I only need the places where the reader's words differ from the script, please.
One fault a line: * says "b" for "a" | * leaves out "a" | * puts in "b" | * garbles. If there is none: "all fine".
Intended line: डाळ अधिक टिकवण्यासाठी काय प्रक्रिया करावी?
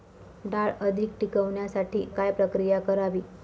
all fine